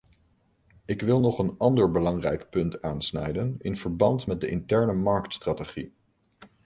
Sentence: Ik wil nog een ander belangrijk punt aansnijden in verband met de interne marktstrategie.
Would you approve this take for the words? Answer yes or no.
yes